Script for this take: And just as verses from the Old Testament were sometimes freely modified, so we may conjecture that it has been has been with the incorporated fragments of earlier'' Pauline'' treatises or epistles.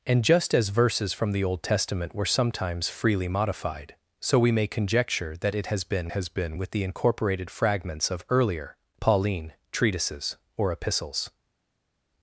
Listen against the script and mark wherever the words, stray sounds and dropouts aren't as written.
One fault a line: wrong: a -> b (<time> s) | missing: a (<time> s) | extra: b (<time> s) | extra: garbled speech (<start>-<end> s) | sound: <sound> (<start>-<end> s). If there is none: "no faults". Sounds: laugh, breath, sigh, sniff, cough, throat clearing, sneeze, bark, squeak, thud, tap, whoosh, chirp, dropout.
no faults